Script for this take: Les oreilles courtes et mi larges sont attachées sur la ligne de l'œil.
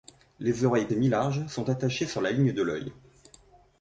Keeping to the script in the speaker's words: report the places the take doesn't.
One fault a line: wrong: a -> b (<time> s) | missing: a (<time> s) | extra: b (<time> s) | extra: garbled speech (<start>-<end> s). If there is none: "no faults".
missing: courtes (0.9 s)